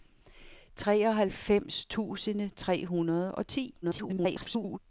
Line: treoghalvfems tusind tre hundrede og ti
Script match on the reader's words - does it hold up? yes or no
no